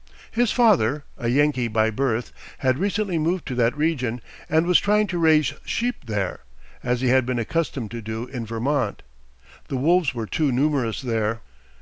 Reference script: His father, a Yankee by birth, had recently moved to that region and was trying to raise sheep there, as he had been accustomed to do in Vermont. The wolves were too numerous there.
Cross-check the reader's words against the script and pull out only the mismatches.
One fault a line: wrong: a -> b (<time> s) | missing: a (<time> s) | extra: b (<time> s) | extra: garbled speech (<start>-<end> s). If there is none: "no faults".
no faults